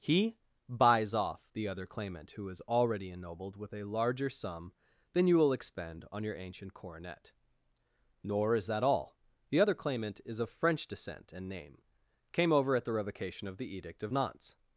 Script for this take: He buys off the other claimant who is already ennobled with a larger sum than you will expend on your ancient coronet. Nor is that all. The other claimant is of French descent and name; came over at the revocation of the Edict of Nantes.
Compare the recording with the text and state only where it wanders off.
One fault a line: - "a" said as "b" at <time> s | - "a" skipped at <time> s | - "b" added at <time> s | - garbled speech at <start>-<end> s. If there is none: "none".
none